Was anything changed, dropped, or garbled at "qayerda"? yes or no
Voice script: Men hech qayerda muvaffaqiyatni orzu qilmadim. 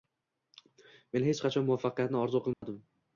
yes